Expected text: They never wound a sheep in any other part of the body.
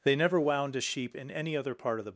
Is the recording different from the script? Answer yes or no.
yes